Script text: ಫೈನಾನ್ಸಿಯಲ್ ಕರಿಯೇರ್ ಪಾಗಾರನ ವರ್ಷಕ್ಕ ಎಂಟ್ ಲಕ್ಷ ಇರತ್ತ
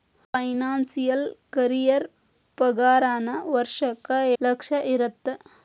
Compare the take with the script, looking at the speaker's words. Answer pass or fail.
fail